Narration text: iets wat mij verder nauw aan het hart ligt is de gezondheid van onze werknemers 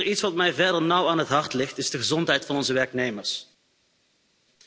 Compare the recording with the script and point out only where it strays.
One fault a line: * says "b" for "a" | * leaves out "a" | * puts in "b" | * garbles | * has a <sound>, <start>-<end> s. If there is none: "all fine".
all fine